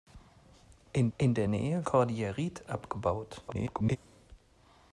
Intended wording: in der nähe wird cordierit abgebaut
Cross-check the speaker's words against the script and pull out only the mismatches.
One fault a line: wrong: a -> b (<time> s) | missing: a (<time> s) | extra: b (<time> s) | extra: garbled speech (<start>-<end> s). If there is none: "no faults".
extra: in (1.2 s)
missing: wird (1.9 s)
extra: garbled speech (3.5-4.0 s)